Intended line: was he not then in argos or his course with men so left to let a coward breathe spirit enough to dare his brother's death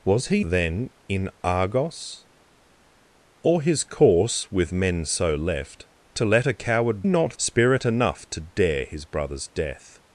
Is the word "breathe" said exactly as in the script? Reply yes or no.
no